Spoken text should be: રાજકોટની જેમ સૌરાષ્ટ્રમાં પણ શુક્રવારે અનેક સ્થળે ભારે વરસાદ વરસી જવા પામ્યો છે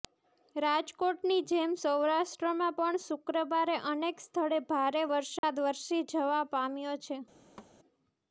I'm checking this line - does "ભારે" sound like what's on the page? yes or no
yes